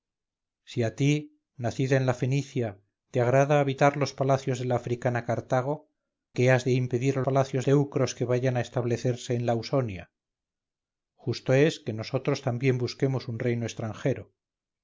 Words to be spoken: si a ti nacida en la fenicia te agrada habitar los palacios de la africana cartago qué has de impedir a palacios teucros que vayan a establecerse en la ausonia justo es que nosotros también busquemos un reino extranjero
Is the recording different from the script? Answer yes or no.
no